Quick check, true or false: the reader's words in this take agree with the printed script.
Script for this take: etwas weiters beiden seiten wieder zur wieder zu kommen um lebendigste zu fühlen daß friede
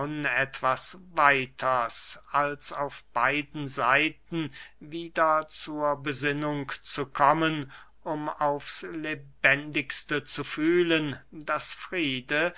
false